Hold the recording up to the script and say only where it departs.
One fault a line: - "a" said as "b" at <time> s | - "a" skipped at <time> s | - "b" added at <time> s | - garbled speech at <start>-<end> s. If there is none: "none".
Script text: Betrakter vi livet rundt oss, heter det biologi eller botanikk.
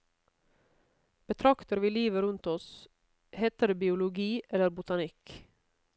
none